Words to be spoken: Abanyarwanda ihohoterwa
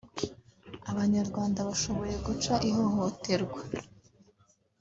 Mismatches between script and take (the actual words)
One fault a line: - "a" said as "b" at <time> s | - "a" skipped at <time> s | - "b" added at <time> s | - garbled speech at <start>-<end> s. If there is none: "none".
- "bashoboye guca" added at 1.7 s